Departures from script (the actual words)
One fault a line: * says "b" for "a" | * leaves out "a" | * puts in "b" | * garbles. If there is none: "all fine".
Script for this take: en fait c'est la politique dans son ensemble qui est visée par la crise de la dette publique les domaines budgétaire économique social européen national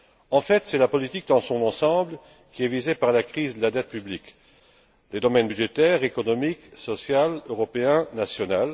all fine